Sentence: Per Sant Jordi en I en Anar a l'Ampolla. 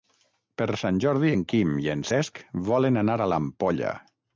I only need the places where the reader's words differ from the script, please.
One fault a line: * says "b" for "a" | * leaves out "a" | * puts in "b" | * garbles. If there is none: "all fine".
* puts in "Quim"
* puts in "Cesc volen"